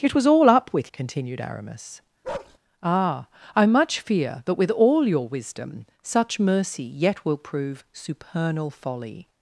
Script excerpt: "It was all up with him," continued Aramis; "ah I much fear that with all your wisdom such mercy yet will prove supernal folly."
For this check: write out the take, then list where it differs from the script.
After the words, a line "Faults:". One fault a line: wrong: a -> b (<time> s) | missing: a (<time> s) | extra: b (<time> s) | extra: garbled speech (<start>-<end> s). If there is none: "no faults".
"It was all up with," continued Aramis; "ah I much fear that with all your wisdom such mercy yet will prove supernal folly."
Faults:
missing: him (0.9 s)